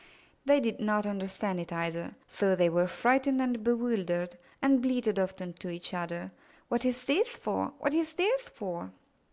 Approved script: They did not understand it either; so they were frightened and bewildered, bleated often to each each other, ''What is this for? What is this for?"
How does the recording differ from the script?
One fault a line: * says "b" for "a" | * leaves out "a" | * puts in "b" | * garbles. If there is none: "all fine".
* puts in "and"
* leaves out "each"